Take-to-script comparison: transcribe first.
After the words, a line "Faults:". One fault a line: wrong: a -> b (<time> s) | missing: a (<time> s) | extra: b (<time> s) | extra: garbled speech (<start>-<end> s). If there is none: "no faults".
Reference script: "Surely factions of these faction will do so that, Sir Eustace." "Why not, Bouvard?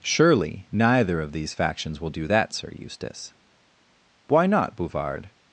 "Surely neither of these factions will do that, Sir Eustace." "Why not, Bouvard?
Faults:
wrong: factions -> neither (0.7 s)
wrong: faction -> factions (1.5 s)
missing: so (2.2 s)